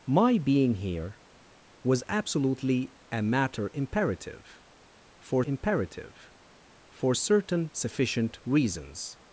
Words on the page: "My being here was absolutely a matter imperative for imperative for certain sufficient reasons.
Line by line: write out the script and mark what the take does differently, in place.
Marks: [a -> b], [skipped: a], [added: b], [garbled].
"My being here was absolutely a matter imperative for imperative for certain sufficient reasons.